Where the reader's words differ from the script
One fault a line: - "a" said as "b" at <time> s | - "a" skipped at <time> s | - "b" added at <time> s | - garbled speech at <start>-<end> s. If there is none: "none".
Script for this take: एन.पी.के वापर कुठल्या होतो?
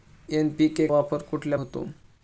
none